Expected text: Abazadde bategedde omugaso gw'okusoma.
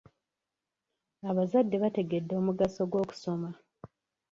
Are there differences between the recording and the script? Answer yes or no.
no